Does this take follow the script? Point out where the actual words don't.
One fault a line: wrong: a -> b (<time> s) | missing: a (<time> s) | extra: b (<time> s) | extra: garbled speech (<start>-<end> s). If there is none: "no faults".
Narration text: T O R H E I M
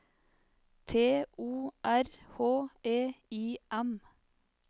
no faults